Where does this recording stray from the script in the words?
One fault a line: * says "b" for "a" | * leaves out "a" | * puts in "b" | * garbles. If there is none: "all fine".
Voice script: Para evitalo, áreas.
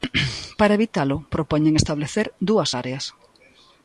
* puts in "propoñen establecer dúas"